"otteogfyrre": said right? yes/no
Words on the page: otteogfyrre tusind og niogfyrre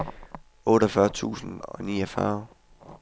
yes